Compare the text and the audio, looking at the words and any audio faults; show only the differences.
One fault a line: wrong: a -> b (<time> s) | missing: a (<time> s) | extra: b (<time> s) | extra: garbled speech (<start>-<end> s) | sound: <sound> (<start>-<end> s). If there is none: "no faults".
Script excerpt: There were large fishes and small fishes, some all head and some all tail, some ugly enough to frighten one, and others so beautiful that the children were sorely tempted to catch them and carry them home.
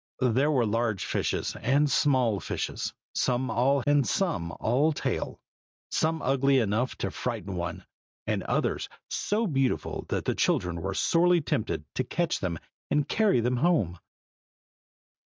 missing: head (3.8 s)